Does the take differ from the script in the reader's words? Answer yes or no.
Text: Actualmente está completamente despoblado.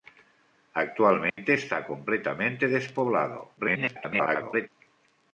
yes